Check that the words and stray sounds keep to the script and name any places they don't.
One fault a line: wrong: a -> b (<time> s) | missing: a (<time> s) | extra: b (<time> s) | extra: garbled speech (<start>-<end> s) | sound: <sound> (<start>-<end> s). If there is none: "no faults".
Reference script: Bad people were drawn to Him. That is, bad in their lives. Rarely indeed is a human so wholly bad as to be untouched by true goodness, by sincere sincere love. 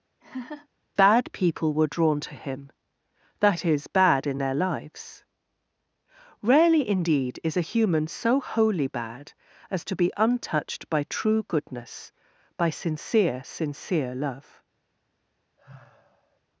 sound: laugh (0.2-0.7 s)
sound: sigh (15.6-16.4 s)